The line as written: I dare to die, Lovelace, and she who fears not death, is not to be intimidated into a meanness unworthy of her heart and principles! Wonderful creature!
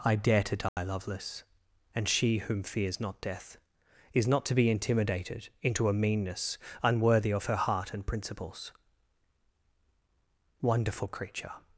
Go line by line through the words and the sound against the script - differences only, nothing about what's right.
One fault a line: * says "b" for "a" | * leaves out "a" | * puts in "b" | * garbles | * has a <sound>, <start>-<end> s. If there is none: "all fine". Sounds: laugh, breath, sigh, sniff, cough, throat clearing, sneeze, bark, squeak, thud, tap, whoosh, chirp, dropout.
* has a dropout, 0.7-0.8 s
* says "whom" for "who"